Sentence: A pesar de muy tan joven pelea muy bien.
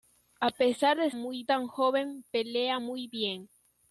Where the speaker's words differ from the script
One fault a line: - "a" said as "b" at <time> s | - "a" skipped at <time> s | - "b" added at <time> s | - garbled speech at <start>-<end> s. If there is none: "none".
none